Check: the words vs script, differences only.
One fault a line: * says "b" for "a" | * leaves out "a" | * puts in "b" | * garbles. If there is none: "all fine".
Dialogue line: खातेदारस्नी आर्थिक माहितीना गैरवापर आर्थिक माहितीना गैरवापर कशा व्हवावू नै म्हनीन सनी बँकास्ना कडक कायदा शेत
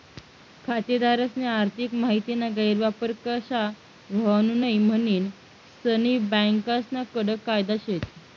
* leaves out "आर्थिक माहितीना गैरवापर"